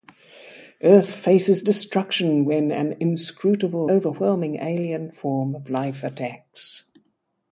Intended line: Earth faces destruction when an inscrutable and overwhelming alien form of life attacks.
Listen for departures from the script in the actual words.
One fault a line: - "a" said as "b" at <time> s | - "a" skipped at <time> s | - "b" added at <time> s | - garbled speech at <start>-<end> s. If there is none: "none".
- "and" skipped at 3.9 s